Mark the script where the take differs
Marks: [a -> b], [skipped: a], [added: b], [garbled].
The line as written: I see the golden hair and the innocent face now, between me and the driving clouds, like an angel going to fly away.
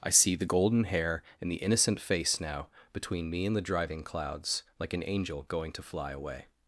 I see the golden hair and the innocent face now, between me and the driving clouds, like an angel going to fly away.